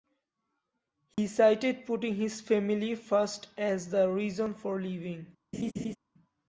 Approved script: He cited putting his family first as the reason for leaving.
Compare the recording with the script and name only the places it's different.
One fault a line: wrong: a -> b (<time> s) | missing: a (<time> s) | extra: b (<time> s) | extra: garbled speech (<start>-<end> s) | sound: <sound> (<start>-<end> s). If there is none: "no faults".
sound: dropout (1.1-1.2 s)
sound: laugh (5.5-6.0 s)